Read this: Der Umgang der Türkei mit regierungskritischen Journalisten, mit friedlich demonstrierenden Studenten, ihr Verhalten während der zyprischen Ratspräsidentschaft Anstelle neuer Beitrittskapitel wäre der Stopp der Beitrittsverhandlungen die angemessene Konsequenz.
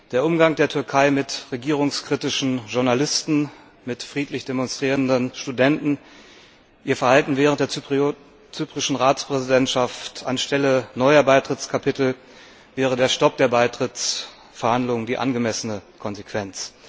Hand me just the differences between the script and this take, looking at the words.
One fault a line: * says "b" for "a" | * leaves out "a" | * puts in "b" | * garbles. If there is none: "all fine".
all fine